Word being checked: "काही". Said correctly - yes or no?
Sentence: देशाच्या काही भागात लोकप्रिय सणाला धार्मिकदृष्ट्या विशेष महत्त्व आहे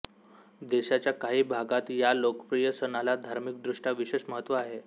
yes